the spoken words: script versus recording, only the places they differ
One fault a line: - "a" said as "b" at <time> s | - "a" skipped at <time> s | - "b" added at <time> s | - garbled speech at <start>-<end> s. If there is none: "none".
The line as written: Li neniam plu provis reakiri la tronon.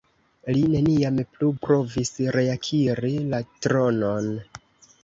none